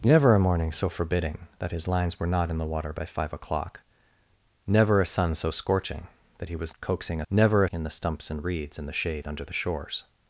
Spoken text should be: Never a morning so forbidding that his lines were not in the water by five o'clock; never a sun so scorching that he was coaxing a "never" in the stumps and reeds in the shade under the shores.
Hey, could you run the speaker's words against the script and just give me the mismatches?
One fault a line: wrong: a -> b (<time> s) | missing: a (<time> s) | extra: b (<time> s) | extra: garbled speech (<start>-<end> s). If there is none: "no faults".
no faults